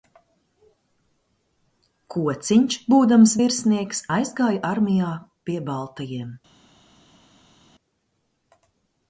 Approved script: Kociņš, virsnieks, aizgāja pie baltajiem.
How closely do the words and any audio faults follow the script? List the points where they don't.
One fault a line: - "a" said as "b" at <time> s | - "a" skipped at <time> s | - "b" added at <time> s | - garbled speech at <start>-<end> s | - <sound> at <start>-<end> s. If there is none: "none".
- "būdams" added at 2.9 s
- "armijā" added at 4.7 s